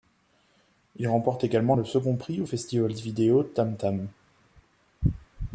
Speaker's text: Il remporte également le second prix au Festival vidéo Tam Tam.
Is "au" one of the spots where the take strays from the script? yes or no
no